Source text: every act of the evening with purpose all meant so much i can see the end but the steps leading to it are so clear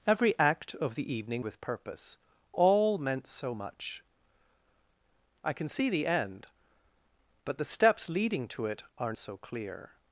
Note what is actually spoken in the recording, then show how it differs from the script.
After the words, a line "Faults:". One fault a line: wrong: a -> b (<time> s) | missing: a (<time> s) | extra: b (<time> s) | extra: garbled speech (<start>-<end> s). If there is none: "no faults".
every act of the evening with purpose all meant so much i can see the end but the steps leading to it are so clear
Faults:
no faults